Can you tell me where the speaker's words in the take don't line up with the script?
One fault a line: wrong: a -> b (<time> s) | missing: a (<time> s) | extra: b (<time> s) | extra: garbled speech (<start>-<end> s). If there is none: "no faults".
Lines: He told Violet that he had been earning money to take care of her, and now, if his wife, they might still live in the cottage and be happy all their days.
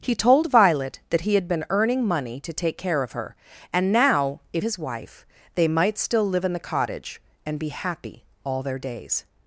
no faults